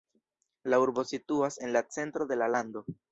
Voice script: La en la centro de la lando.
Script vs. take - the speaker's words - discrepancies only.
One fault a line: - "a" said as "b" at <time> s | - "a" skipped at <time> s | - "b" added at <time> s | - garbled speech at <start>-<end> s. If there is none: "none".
- "urbo situas" added at 0.8 s